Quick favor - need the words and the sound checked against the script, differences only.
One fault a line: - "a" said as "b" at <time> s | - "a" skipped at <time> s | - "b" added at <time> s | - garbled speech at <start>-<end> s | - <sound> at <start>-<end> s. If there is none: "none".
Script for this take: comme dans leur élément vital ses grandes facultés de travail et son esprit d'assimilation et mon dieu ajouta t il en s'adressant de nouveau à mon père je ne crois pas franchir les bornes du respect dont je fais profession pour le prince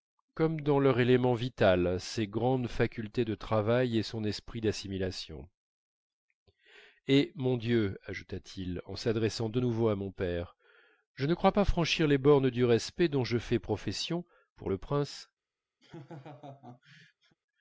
- laugh at 15.8-17.4 s